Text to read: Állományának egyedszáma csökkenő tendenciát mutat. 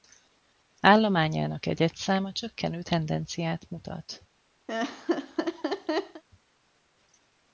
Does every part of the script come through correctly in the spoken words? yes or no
yes